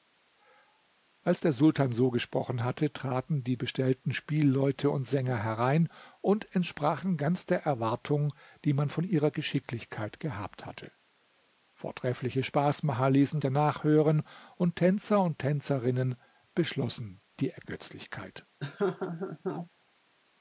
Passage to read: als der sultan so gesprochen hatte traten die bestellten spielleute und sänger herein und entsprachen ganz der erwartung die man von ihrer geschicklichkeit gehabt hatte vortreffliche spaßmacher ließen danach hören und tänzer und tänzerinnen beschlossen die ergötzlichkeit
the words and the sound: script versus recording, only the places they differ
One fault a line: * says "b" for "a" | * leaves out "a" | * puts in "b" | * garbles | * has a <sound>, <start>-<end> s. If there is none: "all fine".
* has a laugh, 18.6-19.7 s